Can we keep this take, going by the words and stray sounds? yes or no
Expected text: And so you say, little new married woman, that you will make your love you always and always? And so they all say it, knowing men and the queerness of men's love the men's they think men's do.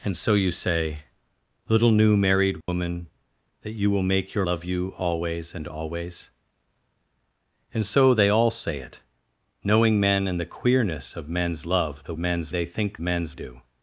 no